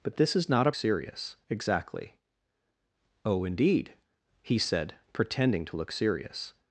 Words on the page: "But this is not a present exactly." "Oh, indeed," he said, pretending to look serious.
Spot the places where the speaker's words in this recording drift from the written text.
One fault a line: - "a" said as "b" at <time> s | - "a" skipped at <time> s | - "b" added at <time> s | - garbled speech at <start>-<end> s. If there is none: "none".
- "present" said as "serious" at 0.7 s